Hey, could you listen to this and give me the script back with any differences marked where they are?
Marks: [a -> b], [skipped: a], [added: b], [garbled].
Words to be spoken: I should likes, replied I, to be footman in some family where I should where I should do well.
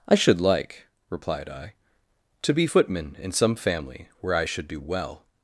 I should [likes, -> like] replied I, to be footman in some family where I should [skipped: where I should] do well.